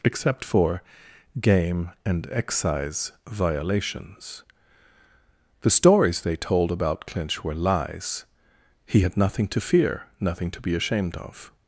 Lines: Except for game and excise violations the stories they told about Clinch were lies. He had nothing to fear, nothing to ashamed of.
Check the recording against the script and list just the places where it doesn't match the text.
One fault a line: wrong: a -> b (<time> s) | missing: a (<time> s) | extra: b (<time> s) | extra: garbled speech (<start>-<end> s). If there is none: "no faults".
extra: be (10.6 s)